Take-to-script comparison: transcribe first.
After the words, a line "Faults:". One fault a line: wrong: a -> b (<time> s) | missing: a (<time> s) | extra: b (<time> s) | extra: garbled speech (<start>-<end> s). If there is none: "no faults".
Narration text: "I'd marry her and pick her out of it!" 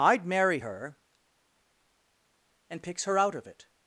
"I'd marry her and picks her out of it!"
Faults:
wrong: pick -> picks (2.8 s)